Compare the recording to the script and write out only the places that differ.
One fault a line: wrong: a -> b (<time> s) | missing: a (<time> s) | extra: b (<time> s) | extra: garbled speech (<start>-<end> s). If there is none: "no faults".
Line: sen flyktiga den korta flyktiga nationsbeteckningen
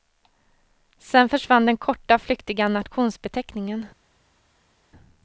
wrong: flyktiga -> försvann (1.3 s)